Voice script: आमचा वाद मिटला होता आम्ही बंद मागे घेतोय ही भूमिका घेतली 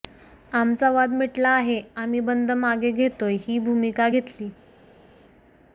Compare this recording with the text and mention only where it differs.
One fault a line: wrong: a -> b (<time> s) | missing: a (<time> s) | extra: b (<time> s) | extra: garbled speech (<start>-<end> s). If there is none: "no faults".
wrong: होता -> आहे (1.5 s)